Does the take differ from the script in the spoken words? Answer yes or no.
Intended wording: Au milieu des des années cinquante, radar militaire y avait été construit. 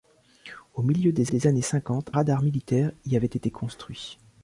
no